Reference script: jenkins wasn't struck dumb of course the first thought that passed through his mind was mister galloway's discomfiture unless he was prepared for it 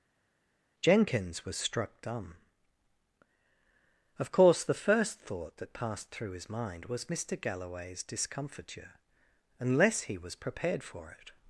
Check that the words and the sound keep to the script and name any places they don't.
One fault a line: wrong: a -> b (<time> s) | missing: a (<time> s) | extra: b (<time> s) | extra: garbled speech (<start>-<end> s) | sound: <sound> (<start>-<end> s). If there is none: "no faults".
wrong: wasn't -> was (1.4 s)